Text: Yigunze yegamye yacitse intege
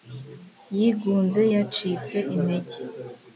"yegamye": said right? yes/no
no